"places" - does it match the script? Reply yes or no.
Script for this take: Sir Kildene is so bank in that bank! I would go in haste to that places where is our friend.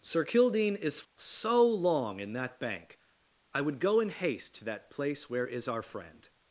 no